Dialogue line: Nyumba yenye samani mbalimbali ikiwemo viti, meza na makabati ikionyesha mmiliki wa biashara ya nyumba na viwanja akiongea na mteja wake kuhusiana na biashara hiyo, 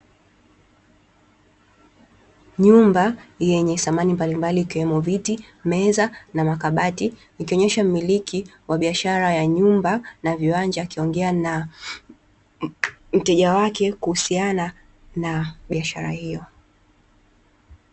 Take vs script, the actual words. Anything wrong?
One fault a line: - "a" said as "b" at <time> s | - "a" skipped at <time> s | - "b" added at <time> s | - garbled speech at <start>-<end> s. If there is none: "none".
none